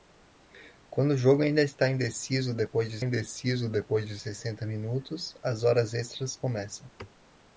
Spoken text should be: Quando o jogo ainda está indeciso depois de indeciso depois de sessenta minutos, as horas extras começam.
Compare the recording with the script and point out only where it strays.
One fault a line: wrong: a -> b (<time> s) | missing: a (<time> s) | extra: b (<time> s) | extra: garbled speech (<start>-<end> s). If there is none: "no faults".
no faults